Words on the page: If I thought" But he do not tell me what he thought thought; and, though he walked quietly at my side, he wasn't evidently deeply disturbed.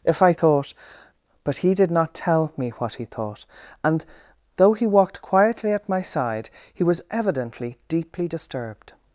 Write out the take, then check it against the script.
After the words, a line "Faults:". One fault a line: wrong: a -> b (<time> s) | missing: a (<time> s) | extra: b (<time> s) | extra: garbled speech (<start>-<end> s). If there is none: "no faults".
If I thought" But he did not tell me what he thought; and, though he walked quietly at my side, he was evidently deeply disturbed.
Faults:
wrong: do -> did (1.7 s)
missing: thought (3.5 s)
wrong: wasn't -> was (6.8 s)